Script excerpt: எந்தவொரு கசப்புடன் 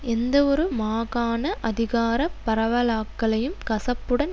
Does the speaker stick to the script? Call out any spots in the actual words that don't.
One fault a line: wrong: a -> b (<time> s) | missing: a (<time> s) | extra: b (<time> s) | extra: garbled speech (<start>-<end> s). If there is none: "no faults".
extra: மாகாண அதிகார பரவலாக்களையும் (0.8 s)